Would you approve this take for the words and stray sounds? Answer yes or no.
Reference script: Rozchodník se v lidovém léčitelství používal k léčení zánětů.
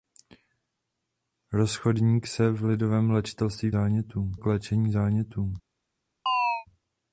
no